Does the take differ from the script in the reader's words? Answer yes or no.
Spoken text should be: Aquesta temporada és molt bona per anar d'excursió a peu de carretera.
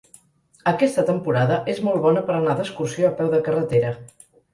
no